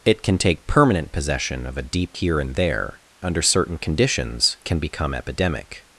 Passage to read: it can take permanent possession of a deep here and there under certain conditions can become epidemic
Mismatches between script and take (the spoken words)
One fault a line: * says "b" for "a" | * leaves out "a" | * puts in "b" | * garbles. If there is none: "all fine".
all fine